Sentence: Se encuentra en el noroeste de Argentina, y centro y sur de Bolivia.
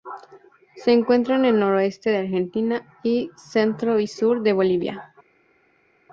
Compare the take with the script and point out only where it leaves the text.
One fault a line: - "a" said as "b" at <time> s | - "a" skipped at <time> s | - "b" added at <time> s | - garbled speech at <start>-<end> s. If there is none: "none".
none